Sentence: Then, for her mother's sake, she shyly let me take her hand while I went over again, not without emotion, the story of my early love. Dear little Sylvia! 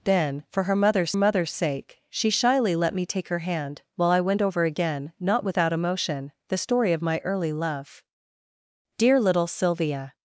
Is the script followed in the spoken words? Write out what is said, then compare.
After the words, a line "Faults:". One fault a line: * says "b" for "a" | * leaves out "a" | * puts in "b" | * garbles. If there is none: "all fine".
Then, for her mother's mother's sake, she shyly let me take her hand while I went over again, not without emotion, the story of my early love. Dear little Sylvia!
Faults:
* puts in "mother's"